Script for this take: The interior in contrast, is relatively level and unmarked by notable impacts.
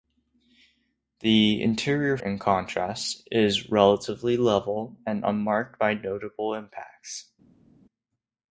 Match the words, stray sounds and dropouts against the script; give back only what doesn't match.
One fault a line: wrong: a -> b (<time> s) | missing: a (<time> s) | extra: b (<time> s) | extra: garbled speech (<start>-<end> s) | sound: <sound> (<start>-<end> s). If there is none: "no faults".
no faults